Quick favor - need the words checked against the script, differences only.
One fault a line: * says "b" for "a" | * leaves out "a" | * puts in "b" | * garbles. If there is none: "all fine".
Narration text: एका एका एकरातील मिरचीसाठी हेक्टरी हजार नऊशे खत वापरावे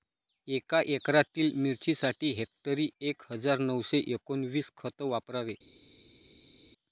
* leaves out "एका"
* puts in "एक"
* puts in "एकोणवीस"